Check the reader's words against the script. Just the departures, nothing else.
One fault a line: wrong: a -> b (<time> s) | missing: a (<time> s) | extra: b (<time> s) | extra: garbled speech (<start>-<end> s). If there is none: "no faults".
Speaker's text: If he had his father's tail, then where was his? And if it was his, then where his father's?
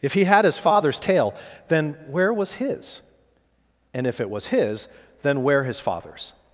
no faults